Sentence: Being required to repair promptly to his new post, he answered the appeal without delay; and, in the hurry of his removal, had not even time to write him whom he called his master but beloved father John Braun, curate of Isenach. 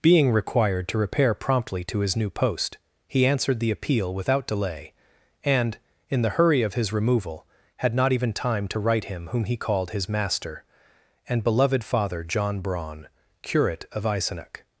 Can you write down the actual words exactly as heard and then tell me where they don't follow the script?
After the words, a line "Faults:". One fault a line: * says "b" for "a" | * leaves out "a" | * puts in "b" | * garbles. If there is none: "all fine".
Being required to repair promptly to his new post, he answered the appeal without delay; and, in the hurry of his removal, had not even time to write him whom he called his master and beloved father John Braun, curate of Isenach.
Faults:
* says "and" for "but"